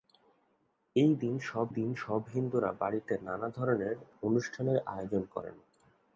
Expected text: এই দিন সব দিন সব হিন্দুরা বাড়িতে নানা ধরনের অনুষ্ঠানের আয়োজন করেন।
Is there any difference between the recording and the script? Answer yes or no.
no